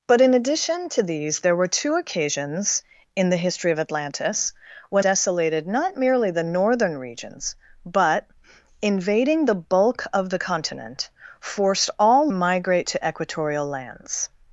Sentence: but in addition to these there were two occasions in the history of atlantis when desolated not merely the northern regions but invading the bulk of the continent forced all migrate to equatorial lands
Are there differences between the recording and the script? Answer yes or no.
no